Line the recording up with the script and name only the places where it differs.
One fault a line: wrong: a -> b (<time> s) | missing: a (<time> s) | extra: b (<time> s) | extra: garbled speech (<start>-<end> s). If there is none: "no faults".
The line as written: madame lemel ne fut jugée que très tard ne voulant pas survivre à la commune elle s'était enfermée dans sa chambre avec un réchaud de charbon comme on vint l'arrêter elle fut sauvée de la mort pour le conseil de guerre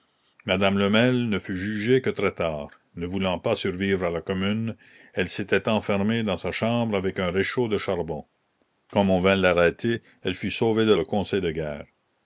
missing: la mort pour (10.9 s)